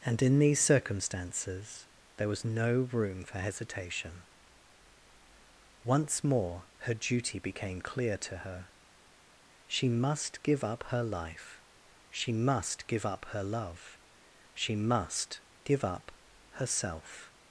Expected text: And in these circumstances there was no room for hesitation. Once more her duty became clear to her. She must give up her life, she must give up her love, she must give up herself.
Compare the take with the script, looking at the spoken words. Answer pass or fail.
pass